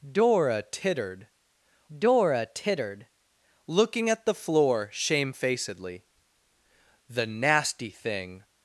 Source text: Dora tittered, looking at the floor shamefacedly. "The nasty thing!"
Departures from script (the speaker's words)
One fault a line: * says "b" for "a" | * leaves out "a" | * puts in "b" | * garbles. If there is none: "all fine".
* puts in "dora tittered"